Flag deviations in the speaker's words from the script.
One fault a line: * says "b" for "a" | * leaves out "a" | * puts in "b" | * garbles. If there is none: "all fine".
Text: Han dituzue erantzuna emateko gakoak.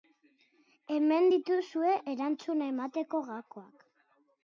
* says "Hemen" for "Han"